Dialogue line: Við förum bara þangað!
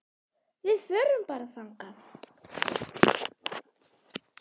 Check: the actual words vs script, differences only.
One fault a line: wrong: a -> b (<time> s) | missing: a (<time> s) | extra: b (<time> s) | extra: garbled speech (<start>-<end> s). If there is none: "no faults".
no faults